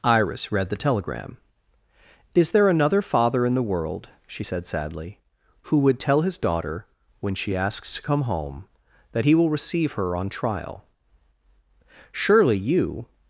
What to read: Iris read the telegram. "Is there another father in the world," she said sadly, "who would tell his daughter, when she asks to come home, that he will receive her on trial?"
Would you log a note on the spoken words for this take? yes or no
yes